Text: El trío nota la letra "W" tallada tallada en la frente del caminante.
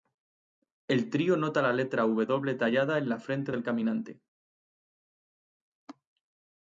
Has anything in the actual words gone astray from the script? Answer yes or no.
yes